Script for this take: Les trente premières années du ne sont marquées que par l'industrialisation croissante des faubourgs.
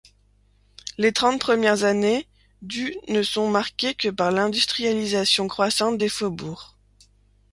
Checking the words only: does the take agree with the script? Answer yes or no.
yes